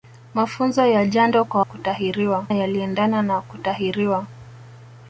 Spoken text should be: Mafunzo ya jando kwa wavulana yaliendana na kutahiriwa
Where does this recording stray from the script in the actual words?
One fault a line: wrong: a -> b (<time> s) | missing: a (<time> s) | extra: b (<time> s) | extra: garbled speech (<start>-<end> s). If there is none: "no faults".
wrong: wavulana -> kutahiriwa (1.6 s)